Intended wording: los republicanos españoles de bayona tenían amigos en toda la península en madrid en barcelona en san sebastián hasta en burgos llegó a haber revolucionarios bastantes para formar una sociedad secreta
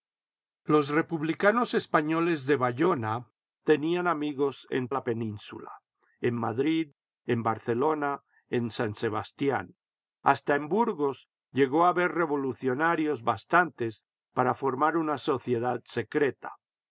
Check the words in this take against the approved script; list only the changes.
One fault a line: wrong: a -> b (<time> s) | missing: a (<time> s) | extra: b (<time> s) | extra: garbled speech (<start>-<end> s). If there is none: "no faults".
missing: toda (4.9 s)